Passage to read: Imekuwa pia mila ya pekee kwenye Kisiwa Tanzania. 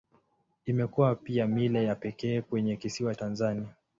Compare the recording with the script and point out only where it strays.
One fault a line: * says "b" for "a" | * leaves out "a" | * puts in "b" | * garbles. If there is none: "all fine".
all fine